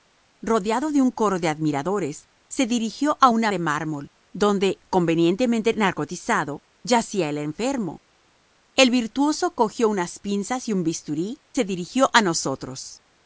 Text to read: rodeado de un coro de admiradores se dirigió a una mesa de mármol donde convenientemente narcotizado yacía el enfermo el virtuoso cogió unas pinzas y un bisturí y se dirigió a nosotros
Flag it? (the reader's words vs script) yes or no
yes